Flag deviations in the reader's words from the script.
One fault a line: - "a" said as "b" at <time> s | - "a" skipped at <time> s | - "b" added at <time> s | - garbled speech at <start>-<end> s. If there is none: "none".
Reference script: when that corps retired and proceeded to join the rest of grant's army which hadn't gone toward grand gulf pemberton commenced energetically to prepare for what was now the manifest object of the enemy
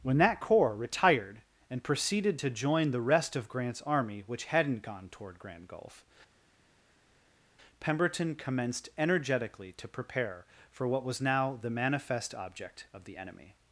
none